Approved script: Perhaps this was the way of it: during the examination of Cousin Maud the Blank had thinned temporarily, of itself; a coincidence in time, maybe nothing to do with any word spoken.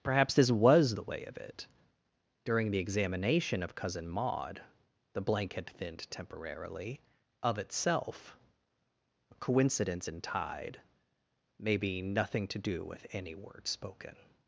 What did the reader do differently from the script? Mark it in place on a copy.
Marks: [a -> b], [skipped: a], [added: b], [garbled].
Perhaps this was the way of it: during the examination of Cousin Maud the Blank had thinned temporarily, of itself; a coincidence in [time, -> tide] maybe nothing to do with any word spoken.